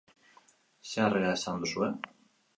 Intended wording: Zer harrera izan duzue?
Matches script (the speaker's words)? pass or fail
pass